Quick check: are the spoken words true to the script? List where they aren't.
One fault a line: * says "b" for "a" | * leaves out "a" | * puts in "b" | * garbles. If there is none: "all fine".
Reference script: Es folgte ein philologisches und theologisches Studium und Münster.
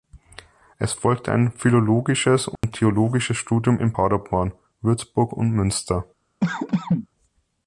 * puts in "in Paderborn Würzburg"